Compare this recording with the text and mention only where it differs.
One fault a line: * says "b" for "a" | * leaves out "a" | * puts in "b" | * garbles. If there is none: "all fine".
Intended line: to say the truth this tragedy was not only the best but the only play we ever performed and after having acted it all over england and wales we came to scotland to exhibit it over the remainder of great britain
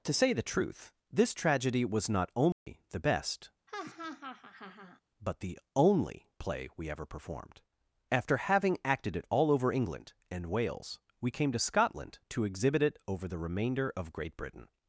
* leaves out "and"